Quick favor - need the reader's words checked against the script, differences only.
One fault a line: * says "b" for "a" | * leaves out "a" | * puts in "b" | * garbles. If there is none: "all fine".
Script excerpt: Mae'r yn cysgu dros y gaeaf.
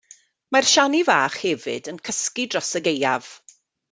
* puts in "siani fach hefyd"